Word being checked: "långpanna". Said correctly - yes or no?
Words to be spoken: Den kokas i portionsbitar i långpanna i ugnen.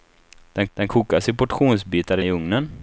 no